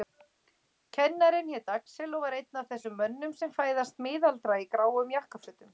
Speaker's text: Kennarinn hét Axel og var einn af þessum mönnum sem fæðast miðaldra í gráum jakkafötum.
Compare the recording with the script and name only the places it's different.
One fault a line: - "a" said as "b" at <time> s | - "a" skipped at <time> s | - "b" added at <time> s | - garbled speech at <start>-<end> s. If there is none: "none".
none